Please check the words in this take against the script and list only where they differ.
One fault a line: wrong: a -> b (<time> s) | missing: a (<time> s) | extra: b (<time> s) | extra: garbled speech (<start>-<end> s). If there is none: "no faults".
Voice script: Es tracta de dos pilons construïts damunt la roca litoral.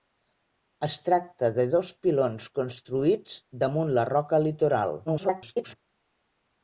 extra: garbled speech (5.1-5.8 s)